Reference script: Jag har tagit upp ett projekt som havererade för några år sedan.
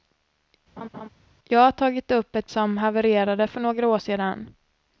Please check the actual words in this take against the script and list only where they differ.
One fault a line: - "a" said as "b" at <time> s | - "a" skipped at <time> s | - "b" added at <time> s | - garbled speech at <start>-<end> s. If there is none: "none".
- "projekt" skipped at 2.5 s